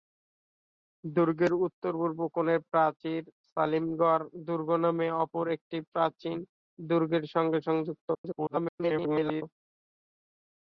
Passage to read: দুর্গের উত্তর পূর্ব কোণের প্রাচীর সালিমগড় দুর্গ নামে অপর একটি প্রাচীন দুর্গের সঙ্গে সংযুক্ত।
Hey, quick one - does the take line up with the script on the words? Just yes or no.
no